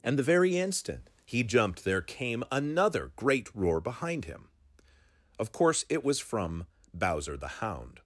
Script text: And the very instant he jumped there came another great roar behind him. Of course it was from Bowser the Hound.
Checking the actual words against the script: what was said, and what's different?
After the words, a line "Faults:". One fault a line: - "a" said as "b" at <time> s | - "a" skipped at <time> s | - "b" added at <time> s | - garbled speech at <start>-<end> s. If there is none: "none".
And the very instant he jumped there came another great roar behind him. Of course it was from Bowser the Hound.
Faults:
none